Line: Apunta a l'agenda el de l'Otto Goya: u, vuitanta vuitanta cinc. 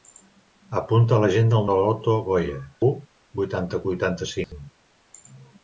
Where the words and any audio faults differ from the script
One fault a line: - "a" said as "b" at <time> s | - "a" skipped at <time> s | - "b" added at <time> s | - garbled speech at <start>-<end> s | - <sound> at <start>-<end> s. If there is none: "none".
- dropout at 4.4-4.5 s